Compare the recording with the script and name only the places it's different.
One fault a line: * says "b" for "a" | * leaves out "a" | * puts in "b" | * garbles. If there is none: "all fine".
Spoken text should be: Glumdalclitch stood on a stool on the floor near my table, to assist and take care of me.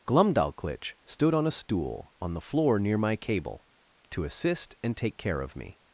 * says "cable" for "table"